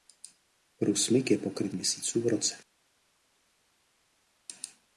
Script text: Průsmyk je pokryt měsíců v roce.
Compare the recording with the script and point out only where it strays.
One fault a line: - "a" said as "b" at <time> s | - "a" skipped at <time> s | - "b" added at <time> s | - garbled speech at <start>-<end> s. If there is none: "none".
none